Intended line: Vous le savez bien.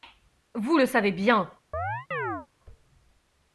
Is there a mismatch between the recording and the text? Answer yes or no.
no